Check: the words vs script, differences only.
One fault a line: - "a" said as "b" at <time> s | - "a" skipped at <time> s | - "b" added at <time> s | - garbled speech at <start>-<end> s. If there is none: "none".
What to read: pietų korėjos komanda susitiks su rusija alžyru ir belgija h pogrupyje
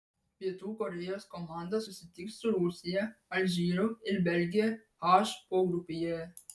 none